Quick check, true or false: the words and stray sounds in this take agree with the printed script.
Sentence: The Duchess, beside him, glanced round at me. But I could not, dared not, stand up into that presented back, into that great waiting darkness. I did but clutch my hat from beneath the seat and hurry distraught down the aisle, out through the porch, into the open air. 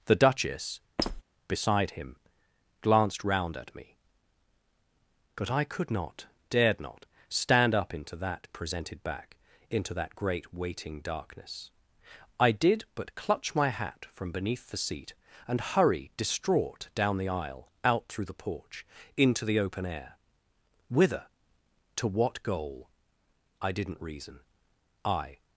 false